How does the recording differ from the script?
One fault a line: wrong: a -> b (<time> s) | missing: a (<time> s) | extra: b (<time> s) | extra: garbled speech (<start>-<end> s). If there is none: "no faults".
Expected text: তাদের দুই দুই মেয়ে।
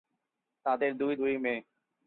no faults